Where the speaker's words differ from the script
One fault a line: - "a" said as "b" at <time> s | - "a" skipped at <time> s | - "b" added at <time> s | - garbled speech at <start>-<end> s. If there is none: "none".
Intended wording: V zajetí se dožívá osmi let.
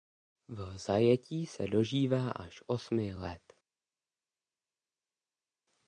- "až" added at 2.3 s